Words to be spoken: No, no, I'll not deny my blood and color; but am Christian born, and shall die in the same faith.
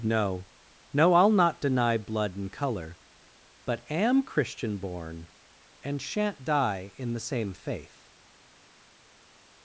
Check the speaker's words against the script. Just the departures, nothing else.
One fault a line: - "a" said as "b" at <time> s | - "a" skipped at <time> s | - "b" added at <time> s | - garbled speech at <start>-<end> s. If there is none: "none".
- "my" skipped at 2.0 s
- "shall" said as "shan't" at 6.0 s